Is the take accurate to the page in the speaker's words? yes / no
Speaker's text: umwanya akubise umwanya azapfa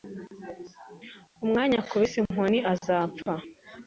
no